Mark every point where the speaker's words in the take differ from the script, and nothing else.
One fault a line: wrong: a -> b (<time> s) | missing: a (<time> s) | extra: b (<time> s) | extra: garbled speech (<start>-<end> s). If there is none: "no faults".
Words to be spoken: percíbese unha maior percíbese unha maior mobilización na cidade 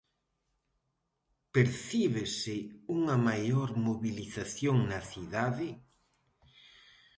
missing: percíbese unha maior (3.7 s)